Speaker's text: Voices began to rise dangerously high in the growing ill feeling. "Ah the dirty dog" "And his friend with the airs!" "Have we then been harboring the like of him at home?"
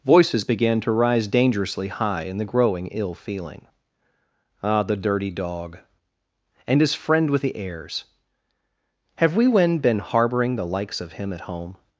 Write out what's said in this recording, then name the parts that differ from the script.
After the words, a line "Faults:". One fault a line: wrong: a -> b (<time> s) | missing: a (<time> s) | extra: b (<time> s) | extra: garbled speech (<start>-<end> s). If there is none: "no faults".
Voices began to rise dangerously high in the growing ill feeling. "Ah the dirty dog" "And his friend with the airs!" "Have we when been harboring the likes of him at home?"
Faults:
wrong: then -> when (9.5 s)
wrong: like -> likes (10.7 s)